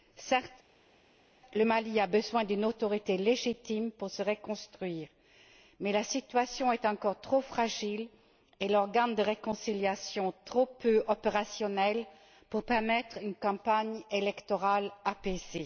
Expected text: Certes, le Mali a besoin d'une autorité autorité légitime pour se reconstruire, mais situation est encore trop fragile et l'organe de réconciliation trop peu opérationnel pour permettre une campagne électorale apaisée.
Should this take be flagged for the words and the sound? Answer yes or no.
yes